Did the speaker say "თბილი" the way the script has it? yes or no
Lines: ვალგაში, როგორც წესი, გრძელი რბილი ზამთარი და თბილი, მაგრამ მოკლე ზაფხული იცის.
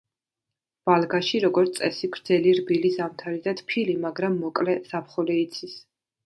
yes